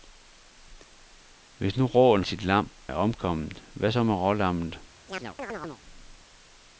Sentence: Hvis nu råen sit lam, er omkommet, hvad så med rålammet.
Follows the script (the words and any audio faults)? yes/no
no